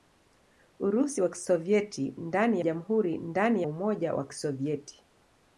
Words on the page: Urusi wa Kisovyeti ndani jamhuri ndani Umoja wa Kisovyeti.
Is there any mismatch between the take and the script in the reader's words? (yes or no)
no